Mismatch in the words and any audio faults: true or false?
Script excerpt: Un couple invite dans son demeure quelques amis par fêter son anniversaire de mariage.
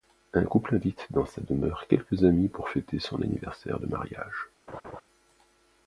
true